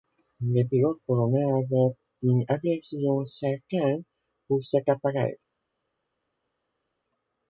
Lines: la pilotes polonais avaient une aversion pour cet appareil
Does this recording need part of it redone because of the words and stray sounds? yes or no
yes